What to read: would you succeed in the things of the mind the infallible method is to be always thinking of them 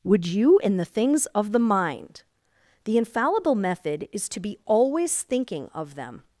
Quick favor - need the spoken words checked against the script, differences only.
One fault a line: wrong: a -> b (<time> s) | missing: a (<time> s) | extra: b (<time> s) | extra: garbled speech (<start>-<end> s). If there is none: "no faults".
missing: succeed (0.6 s)